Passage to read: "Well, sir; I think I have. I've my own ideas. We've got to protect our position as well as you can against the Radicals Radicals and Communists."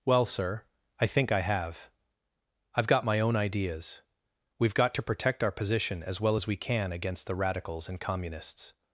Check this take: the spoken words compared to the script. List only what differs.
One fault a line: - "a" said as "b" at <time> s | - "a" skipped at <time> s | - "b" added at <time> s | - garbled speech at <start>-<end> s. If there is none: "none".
- "got" added at 2.9 s
- "you" said as "we" at 6.5 s
- "Radicals" skipped at 7.9 s